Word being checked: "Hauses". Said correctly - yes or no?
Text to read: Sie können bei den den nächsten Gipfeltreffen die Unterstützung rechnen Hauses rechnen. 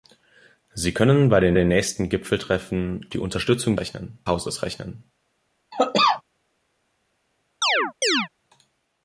yes